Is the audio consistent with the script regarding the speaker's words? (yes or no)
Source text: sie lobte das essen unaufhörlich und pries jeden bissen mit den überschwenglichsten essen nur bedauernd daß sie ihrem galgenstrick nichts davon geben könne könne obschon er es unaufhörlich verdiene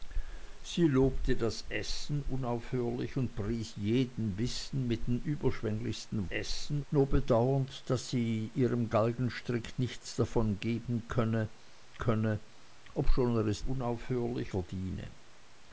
yes